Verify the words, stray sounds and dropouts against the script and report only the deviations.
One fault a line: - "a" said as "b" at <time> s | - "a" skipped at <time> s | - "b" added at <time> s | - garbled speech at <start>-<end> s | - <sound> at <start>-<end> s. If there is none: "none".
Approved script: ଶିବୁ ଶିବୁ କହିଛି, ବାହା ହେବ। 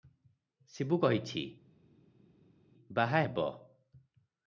- "ଶିବୁ" skipped at 1.0 s